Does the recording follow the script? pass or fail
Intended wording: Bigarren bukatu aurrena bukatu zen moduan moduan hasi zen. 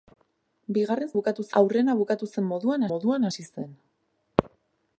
pass